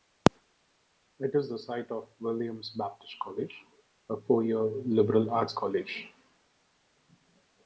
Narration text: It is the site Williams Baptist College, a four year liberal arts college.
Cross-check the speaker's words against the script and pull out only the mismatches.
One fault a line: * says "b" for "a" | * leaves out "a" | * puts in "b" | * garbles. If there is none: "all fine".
* puts in "of"